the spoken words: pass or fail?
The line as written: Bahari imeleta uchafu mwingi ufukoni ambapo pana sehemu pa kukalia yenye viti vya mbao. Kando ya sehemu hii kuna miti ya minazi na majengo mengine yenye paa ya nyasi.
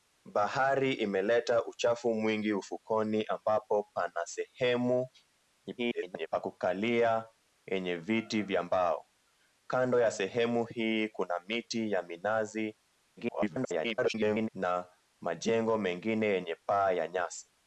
fail